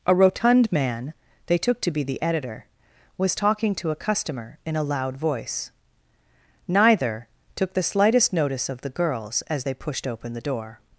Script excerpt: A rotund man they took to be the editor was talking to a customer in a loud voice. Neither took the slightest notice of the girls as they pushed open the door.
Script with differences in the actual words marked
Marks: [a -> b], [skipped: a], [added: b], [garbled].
A rotund man they took to be the editor was talking to a customer in a loud voice. Neither took the slightest notice of the girls as they pushed open the door.